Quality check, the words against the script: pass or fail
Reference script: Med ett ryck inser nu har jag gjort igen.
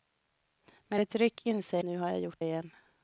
pass